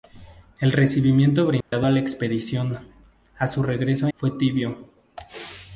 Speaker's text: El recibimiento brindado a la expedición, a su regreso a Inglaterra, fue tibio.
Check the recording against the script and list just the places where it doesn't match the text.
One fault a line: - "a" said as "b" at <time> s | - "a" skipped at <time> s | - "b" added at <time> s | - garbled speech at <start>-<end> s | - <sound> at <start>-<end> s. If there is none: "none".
- dropout at 1.6-1.7 s
- "Inglaterra" skipped at 4.1 s